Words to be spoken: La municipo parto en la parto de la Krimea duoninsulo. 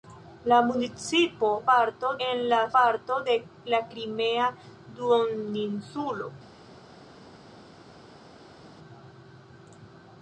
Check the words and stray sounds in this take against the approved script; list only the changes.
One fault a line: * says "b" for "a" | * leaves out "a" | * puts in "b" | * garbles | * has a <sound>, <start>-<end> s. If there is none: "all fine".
all fine